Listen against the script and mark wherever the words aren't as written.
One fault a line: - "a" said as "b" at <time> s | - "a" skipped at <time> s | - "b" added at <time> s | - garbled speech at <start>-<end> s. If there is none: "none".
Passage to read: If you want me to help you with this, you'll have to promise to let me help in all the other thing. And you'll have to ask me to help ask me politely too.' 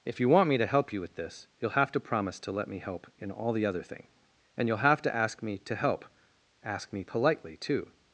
none